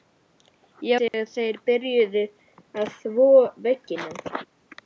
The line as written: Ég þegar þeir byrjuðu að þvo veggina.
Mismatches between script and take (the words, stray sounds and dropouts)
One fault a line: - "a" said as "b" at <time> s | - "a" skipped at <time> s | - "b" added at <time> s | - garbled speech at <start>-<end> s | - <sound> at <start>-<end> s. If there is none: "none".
- dropout at 1.1-1.1 s